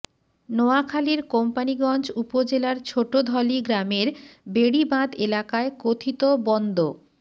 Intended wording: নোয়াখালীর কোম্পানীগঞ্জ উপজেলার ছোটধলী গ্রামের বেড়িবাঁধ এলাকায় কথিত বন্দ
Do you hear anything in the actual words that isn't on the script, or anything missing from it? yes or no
no